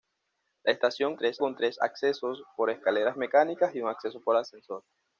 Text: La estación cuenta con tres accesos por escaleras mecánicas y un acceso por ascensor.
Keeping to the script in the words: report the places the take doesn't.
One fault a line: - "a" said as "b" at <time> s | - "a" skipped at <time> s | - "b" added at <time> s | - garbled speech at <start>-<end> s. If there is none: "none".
- "cuenta" said as "tres" at 1.2 s